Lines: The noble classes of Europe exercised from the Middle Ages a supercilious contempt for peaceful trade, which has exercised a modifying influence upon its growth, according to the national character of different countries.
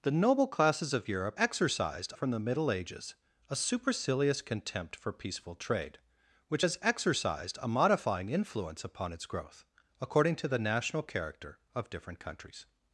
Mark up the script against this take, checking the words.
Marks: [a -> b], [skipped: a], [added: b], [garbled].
The noble classes of Europe exercised from the Middle Ages a supercilious contempt for peaceful trade, which has exercised a modifying influence upon its growth, according to the national character of different countries.